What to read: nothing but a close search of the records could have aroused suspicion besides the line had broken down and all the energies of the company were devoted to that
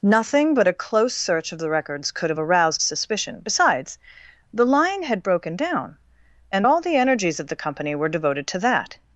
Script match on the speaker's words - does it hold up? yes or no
yes